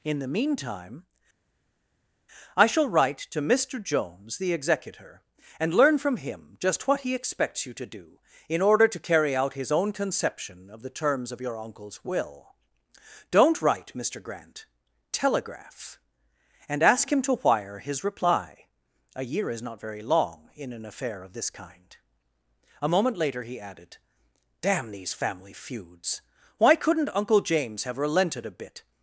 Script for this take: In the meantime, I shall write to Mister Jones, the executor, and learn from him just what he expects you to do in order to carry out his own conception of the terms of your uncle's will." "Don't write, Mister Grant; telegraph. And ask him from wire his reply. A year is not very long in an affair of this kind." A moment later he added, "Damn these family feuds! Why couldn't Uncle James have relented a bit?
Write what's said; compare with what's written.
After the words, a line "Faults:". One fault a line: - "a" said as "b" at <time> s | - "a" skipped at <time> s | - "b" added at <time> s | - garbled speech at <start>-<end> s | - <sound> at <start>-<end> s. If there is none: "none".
In the meantime, I shall write to Mister Jones, the executor, and learn from him just what he expects you to do in order to carry out his own conception of the terms of your uncle's will." "Don't write, Mister Grant; telegraph. And ask him to wire his reply. A year is not very long in an affair of this kind." A moment later he added, "Damn these family feuds! Why couldn't Uncle James have relented a bit?
Faults:
- "from" said as "to" at 17.2 s